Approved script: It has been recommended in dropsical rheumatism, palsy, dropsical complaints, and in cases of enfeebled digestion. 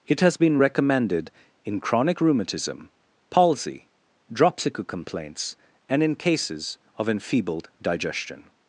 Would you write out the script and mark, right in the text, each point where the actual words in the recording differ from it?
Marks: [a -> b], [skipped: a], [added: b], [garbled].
It has been recommended in [dropsical -> chronic] rheumatism, palsy, dropsical complaints, and in cases of enfeebled digestion.